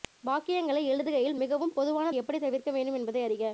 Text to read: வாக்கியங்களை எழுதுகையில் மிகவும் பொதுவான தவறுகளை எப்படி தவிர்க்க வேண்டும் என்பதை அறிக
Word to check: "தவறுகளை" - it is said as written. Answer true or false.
false